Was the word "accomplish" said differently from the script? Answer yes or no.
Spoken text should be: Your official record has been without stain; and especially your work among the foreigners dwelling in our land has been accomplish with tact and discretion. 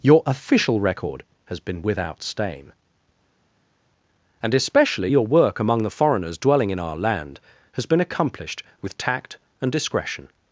yes